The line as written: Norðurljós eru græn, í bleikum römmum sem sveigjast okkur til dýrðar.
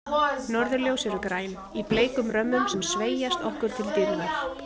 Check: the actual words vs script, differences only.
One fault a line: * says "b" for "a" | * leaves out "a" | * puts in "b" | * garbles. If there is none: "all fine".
all fine